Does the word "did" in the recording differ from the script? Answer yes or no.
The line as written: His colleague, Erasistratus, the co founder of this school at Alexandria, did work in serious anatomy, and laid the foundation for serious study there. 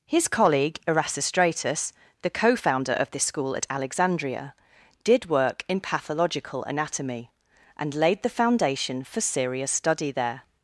no